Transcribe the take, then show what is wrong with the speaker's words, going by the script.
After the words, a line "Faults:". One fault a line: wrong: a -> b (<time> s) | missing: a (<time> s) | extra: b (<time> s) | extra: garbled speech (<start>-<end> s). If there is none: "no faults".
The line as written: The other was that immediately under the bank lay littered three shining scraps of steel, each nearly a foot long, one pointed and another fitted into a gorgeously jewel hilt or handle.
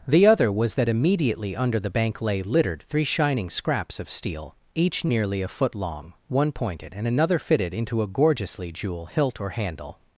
The other was that immediately under the bank lay littered three shining scraps of steel, each nearly a foot long, one pointed and another fitted into a gorgeously jewel hilt or handle.
Faults:
no faults